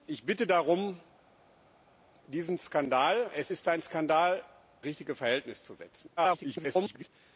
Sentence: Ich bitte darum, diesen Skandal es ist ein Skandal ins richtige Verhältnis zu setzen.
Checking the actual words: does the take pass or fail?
fail